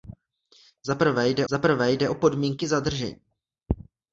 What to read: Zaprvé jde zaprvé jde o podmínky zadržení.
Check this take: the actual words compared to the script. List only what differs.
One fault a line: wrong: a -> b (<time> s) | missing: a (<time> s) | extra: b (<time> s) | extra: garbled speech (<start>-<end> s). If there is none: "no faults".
no faults